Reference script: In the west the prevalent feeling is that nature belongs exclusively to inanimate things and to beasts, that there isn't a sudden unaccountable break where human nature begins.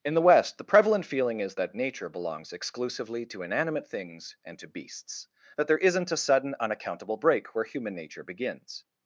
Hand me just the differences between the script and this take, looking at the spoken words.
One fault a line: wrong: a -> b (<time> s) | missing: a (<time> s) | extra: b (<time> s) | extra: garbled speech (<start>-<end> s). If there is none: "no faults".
no faults